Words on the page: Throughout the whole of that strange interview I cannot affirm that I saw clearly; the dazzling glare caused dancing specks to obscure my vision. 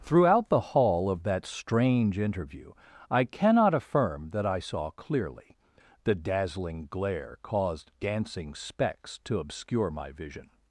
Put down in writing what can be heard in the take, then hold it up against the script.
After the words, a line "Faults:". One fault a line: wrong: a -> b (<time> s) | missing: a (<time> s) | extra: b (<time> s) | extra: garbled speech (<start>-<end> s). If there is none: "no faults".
Throughout the hall of that strange interview I cannot affirm that I saw clearly; the dazzling glare caused dancing specks to obscure my vision.
Faults:
wrong: whole -> hall (0.6 s)